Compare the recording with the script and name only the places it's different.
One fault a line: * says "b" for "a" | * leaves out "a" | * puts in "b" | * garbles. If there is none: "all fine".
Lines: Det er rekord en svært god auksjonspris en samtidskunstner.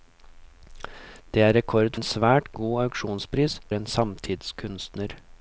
all fine